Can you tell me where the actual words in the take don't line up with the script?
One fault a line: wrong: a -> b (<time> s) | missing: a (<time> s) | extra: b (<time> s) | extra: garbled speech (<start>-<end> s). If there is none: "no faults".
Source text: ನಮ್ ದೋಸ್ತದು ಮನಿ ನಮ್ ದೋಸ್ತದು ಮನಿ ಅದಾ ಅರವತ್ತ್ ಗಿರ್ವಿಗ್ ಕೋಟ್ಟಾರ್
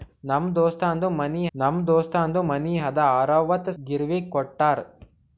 no faults